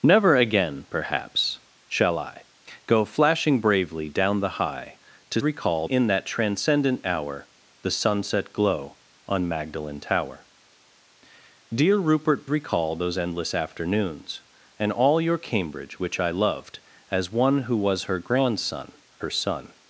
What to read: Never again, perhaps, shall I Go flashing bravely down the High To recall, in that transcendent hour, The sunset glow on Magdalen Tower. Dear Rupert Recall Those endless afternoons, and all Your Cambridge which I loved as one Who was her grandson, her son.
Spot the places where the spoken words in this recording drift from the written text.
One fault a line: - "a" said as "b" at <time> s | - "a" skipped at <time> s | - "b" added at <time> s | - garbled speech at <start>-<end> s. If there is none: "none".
none